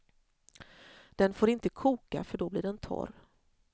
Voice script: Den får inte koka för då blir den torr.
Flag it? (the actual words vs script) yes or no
no